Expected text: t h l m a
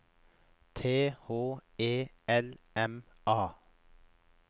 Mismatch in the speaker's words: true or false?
true